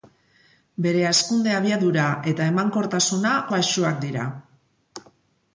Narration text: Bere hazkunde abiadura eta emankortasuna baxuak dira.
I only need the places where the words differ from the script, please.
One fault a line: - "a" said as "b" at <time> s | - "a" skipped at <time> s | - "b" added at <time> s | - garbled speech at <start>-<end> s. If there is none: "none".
none